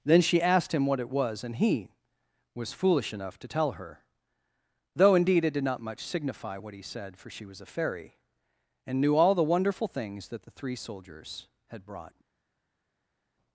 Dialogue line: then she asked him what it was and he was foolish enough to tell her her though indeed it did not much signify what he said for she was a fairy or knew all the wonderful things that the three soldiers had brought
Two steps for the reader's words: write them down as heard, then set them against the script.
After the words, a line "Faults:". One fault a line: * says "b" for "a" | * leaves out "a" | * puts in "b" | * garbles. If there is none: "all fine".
then she asked him what it was and he was foolish enough to tell her though indeed it did not much signify what he said for she was a fairy and knew all the wonderful things that the three soldiers had brought
Faults:
* leaves out "her"
* says "and" for "or"